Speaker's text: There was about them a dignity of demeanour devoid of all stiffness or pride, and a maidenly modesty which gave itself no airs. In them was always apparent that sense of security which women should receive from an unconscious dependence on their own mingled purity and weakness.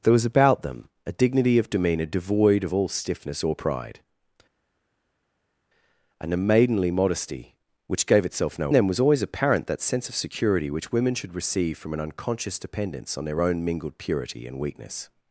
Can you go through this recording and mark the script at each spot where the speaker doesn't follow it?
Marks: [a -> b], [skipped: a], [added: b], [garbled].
There was about them a dignity of demeanour devoid of all stiffness or pride, and a maidenly modesty which gave itself no [skipped: airs. In] them was always apparent that sense of security which women should receive from an unconscious dependence on their own mingled purity and weakness.